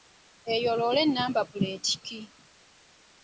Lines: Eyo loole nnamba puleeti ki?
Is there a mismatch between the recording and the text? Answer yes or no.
no